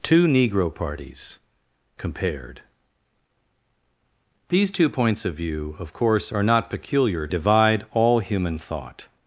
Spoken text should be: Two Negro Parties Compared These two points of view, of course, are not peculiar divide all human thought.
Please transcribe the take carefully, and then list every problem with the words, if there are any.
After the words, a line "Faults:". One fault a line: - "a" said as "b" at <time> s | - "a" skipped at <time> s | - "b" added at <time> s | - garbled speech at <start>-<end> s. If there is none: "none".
Two Negro Parties Compared These two points of view, of course, are not peculiar divide all human thought.
Faults:
none